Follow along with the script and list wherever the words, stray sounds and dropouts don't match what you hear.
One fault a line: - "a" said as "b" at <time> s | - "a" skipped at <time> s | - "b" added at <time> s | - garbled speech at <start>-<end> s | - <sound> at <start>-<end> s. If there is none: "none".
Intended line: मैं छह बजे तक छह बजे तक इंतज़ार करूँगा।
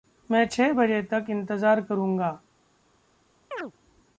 - "छह बजे तक" skipped at 1.3 s
- chirp at 3.5-3.7 s